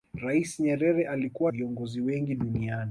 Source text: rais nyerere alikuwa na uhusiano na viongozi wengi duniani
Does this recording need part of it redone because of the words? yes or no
yes